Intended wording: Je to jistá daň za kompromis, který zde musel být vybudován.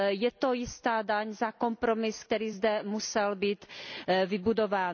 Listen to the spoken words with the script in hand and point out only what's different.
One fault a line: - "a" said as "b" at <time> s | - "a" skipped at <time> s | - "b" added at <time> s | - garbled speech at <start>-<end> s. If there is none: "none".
none